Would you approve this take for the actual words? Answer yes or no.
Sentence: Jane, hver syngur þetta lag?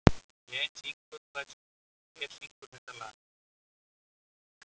no